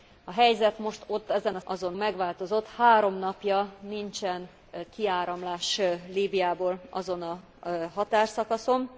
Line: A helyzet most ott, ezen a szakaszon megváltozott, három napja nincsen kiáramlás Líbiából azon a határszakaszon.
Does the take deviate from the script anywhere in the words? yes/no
yes